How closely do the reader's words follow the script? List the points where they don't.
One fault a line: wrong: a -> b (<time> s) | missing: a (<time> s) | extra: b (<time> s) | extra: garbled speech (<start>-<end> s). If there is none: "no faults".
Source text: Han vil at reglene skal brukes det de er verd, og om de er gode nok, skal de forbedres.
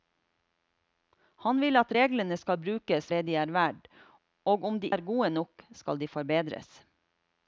no faults